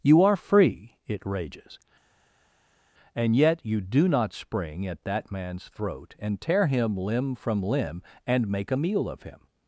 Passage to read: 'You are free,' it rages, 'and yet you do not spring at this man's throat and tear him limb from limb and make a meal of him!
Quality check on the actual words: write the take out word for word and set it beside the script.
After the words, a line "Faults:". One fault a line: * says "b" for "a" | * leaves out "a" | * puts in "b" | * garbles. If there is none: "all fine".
'You are free,' it rages, 'and yet you do not spring at that man's throat and tear him limb from limb and make a meal of him!
Faults:
* says "that" for "this"